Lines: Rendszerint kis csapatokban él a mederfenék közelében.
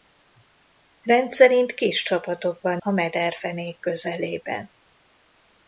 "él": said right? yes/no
no